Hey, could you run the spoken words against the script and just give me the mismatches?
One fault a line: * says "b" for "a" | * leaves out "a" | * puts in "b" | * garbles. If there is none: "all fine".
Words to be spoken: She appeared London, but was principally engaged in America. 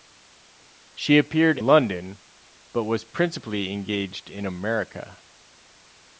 all fine